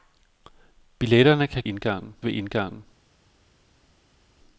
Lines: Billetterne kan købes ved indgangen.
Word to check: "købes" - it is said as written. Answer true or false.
false